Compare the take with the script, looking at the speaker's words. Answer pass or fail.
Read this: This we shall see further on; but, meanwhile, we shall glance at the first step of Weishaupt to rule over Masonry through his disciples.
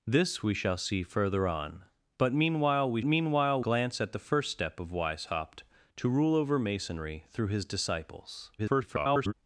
fail